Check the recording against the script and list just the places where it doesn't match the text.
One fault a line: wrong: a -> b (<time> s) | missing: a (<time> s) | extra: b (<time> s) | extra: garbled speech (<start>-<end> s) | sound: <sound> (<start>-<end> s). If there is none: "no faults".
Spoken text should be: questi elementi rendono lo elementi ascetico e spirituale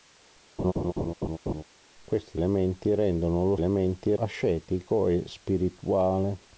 sound: laugh (0.6-1.6 s)